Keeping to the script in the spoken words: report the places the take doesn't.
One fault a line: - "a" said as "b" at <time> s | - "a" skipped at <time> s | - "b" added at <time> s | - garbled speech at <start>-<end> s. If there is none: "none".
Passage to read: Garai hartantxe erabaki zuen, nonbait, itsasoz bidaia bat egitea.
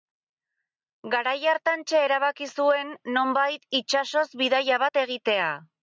none